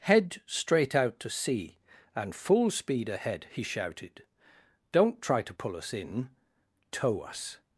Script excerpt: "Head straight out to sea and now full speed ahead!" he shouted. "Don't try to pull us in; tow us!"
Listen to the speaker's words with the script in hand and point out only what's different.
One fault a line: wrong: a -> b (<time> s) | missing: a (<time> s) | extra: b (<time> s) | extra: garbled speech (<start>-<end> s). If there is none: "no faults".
missing: now (2.4 s)